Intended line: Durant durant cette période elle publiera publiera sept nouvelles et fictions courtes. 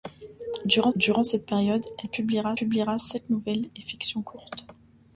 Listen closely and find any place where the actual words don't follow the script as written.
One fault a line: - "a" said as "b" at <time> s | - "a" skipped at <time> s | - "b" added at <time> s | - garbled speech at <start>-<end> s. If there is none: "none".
none